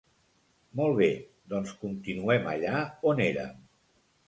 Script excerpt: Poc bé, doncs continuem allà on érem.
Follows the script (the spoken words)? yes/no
no